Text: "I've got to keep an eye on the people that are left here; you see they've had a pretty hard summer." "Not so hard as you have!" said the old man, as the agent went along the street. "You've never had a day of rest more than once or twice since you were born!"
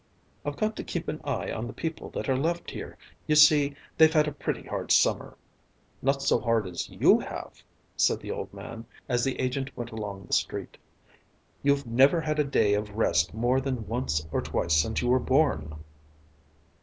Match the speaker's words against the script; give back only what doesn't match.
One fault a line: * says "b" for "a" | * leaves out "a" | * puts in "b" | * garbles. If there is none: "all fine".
all fine